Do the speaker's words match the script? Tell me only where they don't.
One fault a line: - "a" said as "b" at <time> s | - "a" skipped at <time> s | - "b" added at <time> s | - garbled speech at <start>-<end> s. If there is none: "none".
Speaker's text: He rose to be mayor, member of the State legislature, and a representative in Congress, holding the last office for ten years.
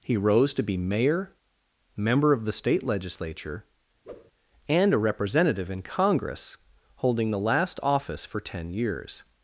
none